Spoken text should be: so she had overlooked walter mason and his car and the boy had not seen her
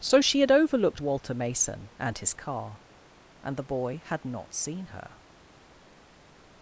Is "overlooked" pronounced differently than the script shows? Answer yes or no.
no